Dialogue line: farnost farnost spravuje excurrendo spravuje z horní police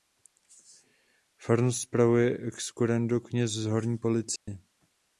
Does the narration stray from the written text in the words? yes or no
yes